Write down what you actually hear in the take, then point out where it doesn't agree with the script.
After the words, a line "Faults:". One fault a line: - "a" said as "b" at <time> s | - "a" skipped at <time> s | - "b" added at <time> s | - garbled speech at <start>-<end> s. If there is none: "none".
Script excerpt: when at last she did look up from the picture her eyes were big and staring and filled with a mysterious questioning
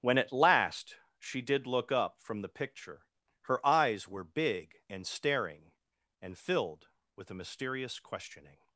when at last she did look up from the picture her eyes were big and staring and filled with a mysterious questioning
Faults:
none